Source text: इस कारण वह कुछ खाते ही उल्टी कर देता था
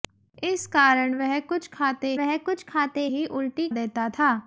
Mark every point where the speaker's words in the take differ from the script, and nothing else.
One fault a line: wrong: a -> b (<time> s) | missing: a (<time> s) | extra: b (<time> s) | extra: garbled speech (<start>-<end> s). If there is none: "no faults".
extra: वह कुछ खाते (2.1 s)
missing: कर (3.7 s)